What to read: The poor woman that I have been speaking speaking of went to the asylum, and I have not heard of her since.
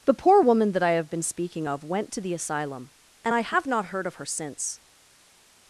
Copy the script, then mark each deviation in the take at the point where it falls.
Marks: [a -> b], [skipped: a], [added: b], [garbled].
The poor woman that I have been speaking [skipped: speaking] of went to the asylum, and I have not heard of her since.